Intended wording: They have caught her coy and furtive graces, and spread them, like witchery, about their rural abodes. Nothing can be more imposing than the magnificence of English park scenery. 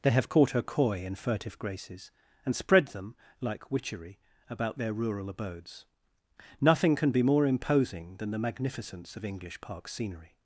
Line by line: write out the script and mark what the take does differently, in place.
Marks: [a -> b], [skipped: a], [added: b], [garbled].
They have caught her coy and furtive graces, and spread them, like witchery, about their rural abodes. Nothing can be more imposing than the magnificence of English park scenery.